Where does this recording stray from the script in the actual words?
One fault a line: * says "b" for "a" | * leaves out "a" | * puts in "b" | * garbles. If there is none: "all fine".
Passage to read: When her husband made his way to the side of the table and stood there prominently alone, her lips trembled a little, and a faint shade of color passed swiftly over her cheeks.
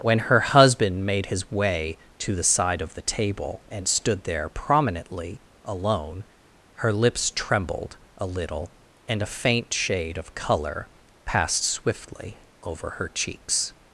all fine